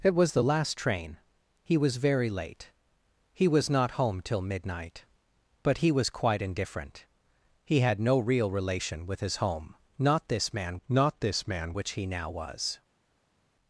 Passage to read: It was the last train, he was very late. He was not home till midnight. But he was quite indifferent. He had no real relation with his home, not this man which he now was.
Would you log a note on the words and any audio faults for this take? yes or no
yes